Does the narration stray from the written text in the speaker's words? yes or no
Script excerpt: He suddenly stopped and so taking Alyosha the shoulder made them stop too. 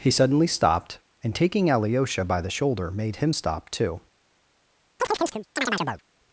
yes